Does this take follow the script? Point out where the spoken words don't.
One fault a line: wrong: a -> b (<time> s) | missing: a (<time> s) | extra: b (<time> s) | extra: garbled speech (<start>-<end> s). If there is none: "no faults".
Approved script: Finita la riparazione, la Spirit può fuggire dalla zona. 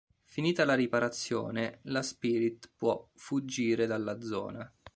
no faults